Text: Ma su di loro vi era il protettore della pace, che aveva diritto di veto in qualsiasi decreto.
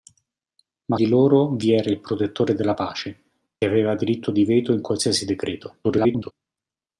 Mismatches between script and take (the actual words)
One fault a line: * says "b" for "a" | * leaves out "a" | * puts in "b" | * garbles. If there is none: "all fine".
* leaves out "su"
* leaves out "che"
* garbles